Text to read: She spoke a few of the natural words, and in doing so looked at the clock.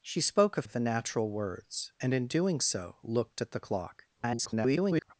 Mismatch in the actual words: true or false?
true